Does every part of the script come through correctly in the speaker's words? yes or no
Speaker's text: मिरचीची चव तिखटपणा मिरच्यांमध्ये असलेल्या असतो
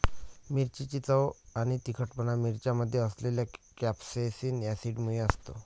no